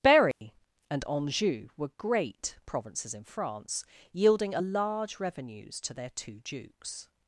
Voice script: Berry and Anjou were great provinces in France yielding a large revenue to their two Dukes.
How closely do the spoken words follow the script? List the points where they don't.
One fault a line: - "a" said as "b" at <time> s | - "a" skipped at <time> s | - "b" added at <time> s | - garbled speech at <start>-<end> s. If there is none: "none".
- "revenue" said as "revenues" at 5.2 s